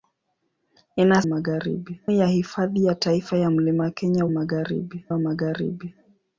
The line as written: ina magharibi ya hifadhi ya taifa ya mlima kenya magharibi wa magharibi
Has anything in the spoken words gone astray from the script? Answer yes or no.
no